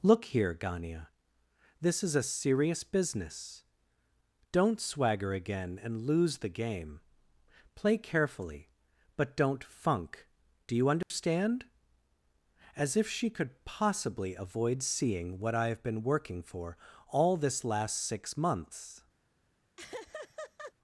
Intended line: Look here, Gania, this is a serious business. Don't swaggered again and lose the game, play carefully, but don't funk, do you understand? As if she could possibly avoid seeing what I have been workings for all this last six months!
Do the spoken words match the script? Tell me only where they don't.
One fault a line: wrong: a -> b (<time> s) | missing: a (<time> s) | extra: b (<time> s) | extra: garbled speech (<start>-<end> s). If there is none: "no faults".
wrong: swaggered -> swagger (4.8 s)
wrong: workings -> working (16.0 s)